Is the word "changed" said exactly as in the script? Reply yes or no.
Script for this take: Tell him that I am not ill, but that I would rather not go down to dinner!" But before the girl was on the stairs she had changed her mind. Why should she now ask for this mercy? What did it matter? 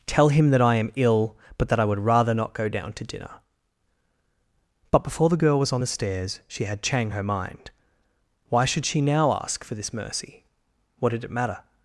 no